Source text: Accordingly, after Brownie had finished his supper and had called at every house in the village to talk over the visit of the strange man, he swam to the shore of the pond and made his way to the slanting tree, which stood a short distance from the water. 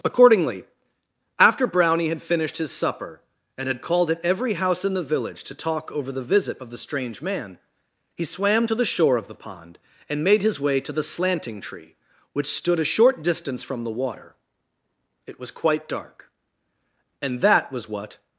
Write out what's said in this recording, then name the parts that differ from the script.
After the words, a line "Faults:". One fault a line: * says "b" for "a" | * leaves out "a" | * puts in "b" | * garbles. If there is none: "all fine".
Accordingly, after Brownie had finished his supper and had called at every house in the village to talk over the visit of the strange man, he swam to the shore of the pond and made his way to the slanting tree, which stood a short distance from the water. It was quite dark. And that was what
Faults:
* puts in "It was quite dark And that was what"